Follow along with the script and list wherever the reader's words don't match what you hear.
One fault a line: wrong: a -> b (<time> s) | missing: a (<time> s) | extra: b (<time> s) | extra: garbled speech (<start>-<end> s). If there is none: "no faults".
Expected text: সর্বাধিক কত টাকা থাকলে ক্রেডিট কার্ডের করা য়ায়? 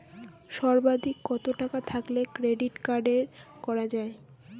no faults